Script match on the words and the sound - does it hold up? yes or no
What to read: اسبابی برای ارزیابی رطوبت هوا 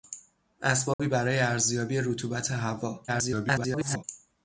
no